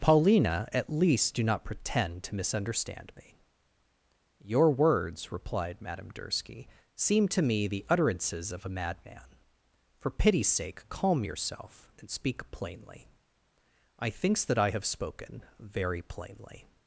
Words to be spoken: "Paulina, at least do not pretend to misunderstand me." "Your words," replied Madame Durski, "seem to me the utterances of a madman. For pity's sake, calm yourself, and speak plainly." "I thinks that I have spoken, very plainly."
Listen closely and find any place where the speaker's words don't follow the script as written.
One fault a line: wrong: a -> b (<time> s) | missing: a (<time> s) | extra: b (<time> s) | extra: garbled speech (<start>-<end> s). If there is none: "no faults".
no faults